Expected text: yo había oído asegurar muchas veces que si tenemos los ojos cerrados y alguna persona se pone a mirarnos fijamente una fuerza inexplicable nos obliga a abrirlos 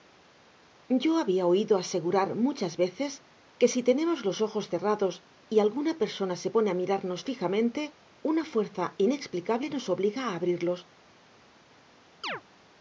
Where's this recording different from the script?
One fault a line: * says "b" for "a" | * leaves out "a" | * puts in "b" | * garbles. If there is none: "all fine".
all fine